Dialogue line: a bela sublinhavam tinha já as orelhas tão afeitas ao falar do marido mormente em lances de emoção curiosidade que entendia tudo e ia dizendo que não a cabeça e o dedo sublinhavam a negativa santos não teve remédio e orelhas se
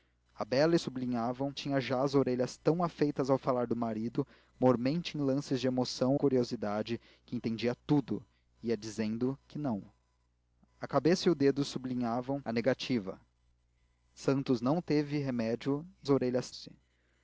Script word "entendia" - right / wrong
right